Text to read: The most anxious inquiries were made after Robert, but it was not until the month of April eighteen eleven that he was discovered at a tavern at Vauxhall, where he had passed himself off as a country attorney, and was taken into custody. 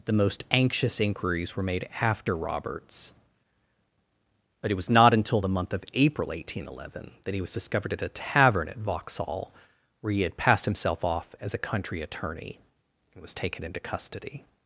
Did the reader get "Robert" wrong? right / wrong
wrong